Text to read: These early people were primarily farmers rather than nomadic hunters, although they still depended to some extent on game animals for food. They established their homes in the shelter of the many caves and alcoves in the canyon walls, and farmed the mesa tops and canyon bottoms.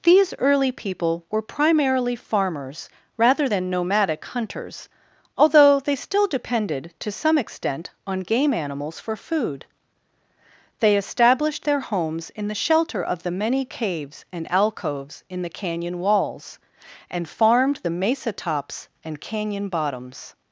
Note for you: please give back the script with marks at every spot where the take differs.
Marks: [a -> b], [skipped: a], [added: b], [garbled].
These early people were primarily farmers rather than nomadic hunters, although they still depended to some extent on game animals for food. They established their homes in the shelter of the many caves and alcoves in the canyon walls, and farmed the mesa tops and canyon bottoms.